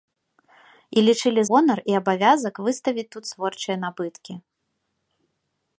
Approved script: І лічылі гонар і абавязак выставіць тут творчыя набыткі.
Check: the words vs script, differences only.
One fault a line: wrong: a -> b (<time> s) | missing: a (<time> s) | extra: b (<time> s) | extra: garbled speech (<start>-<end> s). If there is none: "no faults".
no faults